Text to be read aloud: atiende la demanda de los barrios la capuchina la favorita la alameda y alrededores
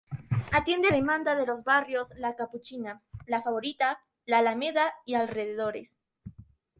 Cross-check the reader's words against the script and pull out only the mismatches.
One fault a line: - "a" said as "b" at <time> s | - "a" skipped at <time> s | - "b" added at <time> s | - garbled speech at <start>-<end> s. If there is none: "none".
- "la" skipped at 0.9 s